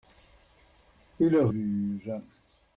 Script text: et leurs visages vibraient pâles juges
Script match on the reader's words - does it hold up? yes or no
no